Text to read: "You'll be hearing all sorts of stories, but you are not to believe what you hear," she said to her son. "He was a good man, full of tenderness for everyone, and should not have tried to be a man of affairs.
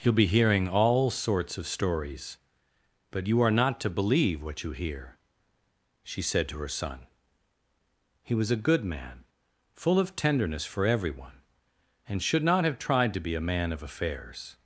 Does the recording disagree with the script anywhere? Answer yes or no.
no